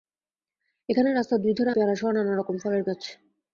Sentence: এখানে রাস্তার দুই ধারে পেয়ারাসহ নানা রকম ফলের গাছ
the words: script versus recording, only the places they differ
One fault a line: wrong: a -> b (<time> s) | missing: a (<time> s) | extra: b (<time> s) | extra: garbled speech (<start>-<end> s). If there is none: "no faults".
no faults